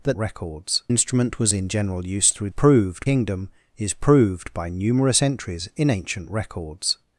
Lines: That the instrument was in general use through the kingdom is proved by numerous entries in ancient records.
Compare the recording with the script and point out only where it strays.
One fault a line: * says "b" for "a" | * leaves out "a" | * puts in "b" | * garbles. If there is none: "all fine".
* says "records" for "the"
* says "proved" for "the"